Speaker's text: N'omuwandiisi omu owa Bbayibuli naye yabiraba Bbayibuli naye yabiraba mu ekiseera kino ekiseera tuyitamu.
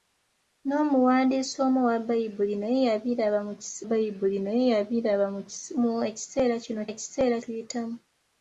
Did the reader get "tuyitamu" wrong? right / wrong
right